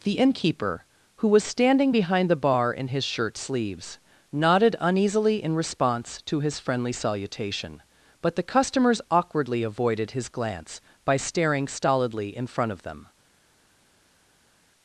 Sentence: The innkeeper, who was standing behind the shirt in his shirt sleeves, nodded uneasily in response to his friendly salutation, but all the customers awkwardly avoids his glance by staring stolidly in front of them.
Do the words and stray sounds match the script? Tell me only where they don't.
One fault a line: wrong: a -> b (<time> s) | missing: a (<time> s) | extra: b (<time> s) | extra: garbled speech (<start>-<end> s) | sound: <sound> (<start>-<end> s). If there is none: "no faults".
wrong: shirt -> bar (2.4 s)
missing: all (8.4 s)
wrong: avoids -> avoided (9.6 s)